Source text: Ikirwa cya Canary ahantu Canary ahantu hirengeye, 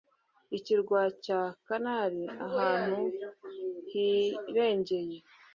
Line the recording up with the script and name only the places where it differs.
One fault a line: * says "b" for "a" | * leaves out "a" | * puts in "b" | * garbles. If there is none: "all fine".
* leaves out "Canary ahantu"